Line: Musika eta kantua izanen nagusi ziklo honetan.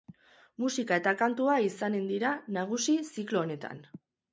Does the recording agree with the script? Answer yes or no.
no